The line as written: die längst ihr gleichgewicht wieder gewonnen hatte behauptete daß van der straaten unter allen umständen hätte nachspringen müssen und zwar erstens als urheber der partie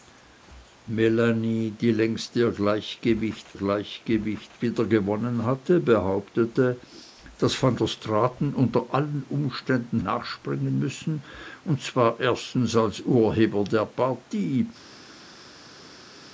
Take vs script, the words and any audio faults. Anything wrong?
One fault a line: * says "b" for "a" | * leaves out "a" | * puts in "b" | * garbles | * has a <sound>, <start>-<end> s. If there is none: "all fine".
* puts in "gleichgewicht"
* leaves out "hätte"